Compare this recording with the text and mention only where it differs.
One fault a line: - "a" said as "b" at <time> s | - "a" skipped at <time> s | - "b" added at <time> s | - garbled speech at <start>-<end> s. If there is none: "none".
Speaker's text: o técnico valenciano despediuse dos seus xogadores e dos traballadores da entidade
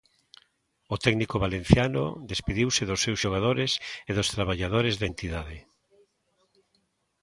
none